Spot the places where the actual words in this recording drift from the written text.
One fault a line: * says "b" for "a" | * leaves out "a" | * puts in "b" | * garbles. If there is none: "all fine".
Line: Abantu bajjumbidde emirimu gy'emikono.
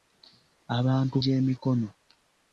* leaves out "bajjumbidde emirimu"